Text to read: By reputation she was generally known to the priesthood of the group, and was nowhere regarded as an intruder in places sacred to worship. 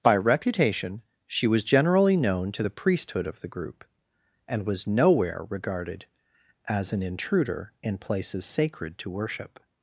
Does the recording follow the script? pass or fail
pass